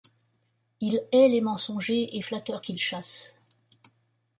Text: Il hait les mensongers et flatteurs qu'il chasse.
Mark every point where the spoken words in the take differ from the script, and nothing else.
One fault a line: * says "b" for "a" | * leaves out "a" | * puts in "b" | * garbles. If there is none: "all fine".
all fine